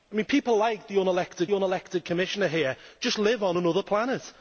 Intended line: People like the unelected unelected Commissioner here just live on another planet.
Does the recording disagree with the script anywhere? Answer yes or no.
no